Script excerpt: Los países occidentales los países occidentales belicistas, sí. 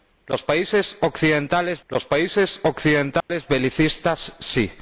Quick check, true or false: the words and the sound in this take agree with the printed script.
false